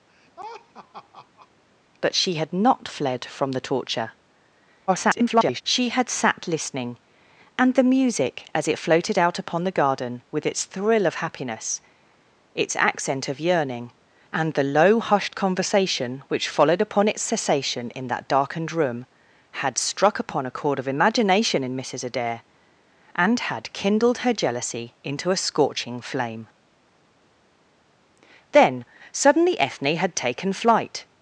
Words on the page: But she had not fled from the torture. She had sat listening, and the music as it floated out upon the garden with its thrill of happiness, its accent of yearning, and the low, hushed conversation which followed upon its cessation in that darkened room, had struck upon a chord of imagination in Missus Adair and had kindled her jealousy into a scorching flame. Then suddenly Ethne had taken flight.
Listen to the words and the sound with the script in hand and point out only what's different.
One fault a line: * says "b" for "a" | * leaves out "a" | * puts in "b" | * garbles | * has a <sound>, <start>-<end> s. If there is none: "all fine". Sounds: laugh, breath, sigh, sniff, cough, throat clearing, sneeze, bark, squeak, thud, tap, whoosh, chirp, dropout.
* has a laugh, 0.1-1.5 s
* garbles